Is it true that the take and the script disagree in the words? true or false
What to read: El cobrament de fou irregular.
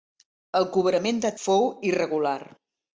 false